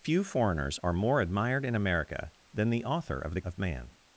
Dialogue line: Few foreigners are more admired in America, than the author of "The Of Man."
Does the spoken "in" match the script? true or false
true